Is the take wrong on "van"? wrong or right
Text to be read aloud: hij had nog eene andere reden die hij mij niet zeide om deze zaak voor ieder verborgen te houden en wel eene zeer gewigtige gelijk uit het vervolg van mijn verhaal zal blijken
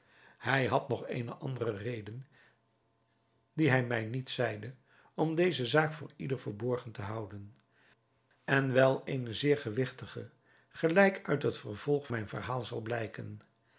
wrong